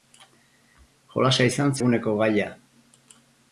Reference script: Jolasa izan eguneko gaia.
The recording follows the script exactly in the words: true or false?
true